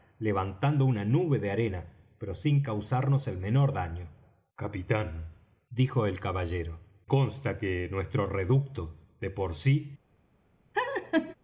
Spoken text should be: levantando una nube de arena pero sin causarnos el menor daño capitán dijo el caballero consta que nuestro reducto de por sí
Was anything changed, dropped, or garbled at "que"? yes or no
no